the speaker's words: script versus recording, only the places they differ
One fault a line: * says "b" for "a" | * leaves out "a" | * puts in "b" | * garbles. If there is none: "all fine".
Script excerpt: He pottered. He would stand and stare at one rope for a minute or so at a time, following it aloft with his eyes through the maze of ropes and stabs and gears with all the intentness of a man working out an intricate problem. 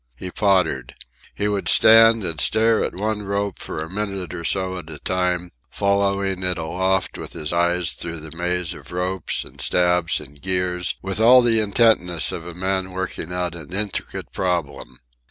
all fine